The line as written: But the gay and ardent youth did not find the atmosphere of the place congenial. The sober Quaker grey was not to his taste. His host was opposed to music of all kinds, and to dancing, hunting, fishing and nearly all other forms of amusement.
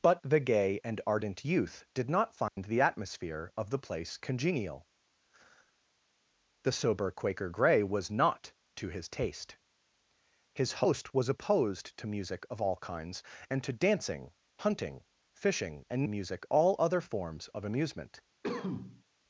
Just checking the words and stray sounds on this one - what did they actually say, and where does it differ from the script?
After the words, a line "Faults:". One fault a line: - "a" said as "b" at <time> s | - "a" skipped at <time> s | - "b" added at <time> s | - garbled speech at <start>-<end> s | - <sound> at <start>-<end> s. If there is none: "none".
But the gay and ardent youth did not find the atmosphere of the place congenial. The sober Quaker grey was not to his taste. His host was opposed to music of all kinds, and to dancing, hunting, fishing and music all other forms of amusement.
Faults:
- dropout at 2.5-2.6 s
- "nearly" said as "music" at 16.1 s
- cough at 18.4-19.0 s